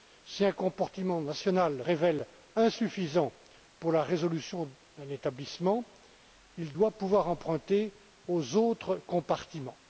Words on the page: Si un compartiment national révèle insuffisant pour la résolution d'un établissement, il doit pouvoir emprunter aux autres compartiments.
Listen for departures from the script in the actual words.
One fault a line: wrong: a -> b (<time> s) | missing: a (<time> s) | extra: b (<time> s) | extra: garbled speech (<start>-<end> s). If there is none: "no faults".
no faults